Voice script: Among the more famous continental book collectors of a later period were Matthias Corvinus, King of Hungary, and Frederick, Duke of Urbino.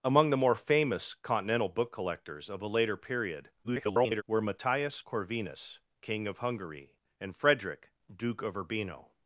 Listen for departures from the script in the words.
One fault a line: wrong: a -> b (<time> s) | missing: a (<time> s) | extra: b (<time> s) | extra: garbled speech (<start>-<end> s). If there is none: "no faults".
extra: garbled speech (3.6-4.2 s)